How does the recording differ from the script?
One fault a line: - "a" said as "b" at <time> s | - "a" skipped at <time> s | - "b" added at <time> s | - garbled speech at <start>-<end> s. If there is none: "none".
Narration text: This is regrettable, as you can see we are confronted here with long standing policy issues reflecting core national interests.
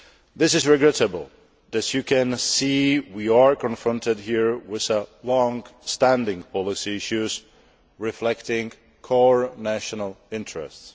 none